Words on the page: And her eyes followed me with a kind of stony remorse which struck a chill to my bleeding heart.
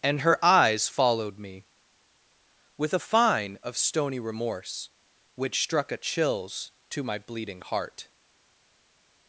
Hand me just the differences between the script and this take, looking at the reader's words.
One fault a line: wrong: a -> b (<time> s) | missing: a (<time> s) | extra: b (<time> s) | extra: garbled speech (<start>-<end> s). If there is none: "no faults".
wrong: kind -> fine (3.0 s)
wrong: chill -> chills (6.0 s)